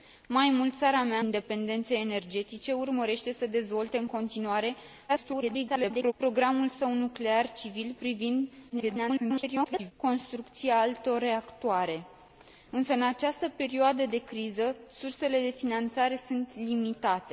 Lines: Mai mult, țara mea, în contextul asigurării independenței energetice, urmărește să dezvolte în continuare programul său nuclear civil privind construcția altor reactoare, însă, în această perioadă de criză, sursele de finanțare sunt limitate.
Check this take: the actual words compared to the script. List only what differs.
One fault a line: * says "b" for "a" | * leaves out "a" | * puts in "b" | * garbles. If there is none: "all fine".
* leaves out "în contextul asigurării"
* garbles
* garbles